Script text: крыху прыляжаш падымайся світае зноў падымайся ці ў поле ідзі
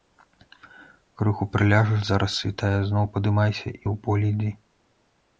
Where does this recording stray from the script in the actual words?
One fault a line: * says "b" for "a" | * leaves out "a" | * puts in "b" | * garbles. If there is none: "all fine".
* says "зараз" for "падымайся"
* says "і" for "ці"